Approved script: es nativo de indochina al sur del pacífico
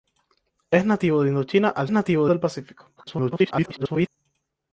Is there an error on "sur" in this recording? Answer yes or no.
yes